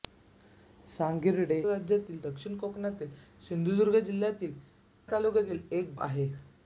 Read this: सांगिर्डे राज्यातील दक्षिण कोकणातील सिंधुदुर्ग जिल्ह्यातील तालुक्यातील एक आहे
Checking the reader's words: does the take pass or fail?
pass